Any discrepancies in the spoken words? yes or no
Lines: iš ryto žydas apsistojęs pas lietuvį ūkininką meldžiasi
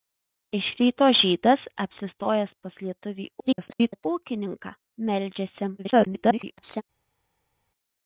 yes